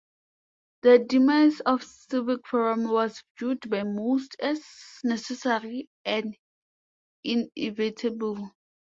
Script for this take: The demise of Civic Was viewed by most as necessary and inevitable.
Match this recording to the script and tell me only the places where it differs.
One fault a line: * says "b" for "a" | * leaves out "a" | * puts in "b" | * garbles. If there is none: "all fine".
* puts in "Forum"